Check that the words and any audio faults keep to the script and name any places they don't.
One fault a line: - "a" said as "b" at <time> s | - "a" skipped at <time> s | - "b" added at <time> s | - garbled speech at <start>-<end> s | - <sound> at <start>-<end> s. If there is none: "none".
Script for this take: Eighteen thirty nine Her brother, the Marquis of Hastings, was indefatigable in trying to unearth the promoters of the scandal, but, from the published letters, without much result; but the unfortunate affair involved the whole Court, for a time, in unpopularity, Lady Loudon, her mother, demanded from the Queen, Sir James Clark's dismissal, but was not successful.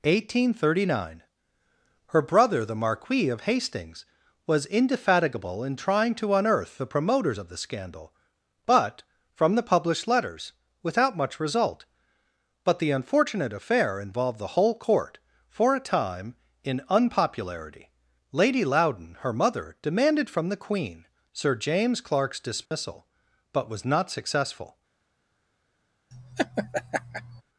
- dropout at 22.7-22.7 s
- laugh at 26.1-27.4 s